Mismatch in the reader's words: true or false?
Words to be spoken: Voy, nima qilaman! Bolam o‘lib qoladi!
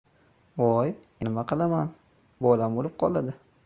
false